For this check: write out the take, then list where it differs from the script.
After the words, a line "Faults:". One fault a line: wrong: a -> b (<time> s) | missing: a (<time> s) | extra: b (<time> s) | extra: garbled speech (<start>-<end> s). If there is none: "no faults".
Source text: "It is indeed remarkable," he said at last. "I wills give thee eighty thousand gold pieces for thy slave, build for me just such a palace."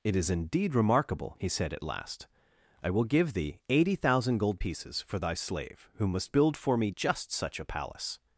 "It is indeed remarkable," he said at last. "I will give thee eighty thousand gold pieces for thy slave, who must build for me just such a palace."
Faults:
wrong: wills -> will (2.9 s)
extra: who must (5.9 s)